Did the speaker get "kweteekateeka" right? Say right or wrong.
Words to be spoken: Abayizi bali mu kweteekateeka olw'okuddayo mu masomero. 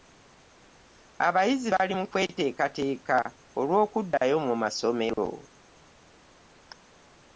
right